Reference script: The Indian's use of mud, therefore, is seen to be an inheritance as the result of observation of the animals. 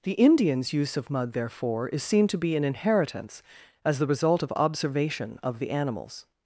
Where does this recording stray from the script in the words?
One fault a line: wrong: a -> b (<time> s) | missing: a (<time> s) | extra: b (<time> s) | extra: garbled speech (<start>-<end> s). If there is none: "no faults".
no faults